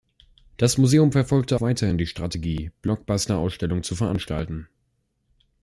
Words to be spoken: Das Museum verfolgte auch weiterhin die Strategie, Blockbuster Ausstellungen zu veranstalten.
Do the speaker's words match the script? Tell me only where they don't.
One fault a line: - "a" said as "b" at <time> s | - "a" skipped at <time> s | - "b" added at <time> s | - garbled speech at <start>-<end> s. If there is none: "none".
- "auch" skipped at 1.6 s